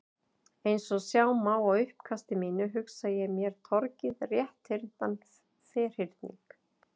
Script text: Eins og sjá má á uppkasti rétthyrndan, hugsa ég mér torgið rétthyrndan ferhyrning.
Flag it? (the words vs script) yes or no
yes